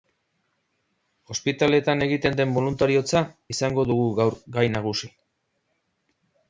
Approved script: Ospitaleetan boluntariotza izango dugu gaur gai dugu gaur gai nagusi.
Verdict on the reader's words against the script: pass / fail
fail